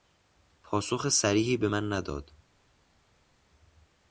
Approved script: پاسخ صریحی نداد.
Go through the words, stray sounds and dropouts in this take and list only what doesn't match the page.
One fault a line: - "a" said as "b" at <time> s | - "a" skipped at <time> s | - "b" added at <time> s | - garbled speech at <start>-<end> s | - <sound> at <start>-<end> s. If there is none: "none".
- "به من" added at 1.6 s